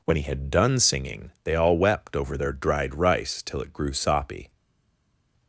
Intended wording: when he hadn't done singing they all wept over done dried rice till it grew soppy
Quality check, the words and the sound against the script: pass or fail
fail